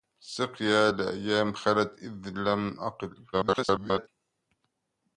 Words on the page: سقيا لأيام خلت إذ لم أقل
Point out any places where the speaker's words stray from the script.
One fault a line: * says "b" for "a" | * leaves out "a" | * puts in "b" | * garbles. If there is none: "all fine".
* garbles